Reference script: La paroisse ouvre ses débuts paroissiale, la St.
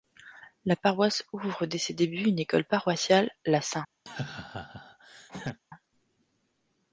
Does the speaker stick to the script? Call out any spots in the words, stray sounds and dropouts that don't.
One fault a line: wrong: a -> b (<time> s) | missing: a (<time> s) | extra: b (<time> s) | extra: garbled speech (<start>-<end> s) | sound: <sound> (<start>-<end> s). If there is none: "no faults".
extra: dès (1.7 s)
extra: une école (2.3 s)
sound: laugh (4.1-5.6 s)